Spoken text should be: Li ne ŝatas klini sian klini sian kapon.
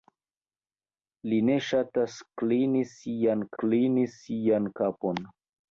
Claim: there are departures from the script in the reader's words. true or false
false